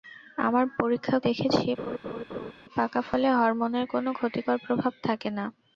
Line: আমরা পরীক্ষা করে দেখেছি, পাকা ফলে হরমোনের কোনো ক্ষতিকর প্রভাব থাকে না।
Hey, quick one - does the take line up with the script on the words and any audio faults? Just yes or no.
no